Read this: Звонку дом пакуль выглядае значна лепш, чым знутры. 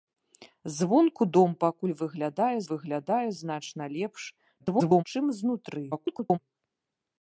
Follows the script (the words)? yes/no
no